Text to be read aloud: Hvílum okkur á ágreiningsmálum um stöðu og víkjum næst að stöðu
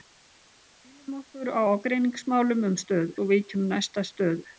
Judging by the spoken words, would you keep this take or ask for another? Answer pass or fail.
pass